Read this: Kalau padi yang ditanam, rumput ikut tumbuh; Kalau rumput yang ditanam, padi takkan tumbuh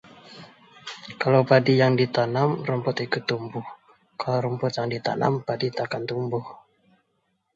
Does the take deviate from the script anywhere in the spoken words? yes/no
no